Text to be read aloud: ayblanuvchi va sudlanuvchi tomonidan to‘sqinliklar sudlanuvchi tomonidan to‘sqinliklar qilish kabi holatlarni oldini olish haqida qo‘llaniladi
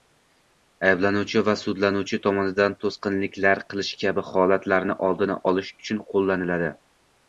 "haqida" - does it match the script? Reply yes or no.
no